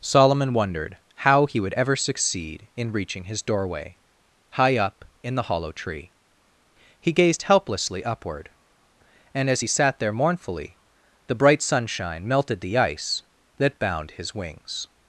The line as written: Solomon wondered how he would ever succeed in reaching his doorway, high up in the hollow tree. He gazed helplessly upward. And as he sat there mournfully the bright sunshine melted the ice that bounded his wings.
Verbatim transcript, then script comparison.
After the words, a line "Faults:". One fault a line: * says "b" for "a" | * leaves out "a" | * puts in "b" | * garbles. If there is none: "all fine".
Solomon wondered how he would ever succeed in reaching his doorway, high up in the hollow tree. He gazed helplessly upward. And as he sat there mournfully the bright sunshine melted the ice that bound his wings.
Faults:
* says "bound" for "bounded"